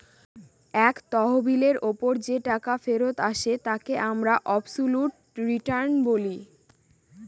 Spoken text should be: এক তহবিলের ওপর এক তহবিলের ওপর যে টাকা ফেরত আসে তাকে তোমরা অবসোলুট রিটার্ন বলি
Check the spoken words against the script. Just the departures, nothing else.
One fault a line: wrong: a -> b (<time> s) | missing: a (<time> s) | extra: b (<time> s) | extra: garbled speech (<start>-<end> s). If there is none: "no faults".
missing: এক তহবিলের ওপর (2.1 s)
wrong: তোমরা -> আমরা (4.1 s)